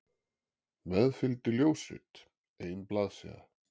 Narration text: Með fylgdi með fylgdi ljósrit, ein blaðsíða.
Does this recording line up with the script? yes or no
no